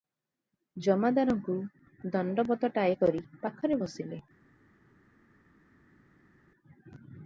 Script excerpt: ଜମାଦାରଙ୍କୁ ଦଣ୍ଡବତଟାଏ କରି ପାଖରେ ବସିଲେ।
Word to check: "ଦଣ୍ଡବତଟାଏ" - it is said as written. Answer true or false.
true